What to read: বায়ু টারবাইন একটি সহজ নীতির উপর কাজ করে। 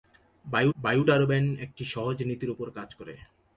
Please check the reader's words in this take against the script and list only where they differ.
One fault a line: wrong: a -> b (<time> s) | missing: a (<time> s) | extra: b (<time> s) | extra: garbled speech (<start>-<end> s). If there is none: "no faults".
extra: বায়ু (0.8 s)